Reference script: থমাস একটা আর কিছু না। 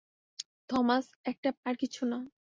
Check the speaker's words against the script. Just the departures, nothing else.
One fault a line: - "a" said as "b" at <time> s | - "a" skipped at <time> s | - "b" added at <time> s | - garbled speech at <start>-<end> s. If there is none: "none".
none